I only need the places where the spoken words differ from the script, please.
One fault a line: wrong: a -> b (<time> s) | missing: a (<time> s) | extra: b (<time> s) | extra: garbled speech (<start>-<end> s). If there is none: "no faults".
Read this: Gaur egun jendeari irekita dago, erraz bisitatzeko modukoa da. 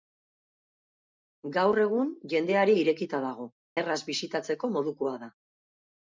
no faults